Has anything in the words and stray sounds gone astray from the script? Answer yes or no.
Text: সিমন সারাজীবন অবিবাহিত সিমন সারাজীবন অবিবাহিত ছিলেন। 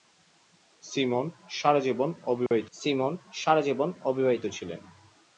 yes